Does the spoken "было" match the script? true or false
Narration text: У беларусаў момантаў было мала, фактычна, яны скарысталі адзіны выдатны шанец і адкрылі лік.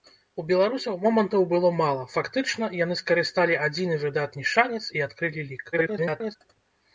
true